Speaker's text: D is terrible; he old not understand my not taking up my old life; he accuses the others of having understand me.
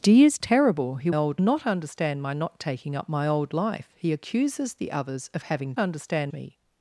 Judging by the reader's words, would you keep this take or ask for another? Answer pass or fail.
pass